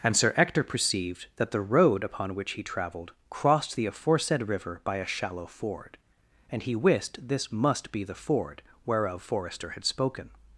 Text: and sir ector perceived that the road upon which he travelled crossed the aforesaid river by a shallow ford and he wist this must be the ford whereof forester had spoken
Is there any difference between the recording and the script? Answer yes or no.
no